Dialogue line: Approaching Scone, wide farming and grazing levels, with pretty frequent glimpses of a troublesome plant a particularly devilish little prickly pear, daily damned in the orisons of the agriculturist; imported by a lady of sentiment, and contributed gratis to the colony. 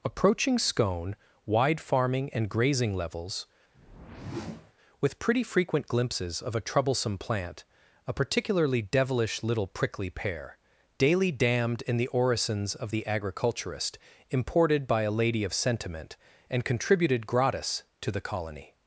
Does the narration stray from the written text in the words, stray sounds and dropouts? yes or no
yes